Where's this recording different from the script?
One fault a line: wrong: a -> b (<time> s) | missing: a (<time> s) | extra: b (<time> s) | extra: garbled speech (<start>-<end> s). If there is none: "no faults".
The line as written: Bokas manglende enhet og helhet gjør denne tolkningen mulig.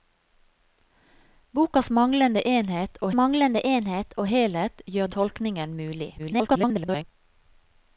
extra: manglende enhet og (3.2 s)
missing: denne (5.1 s)
extra: garbled speech (6.2-7.0 s)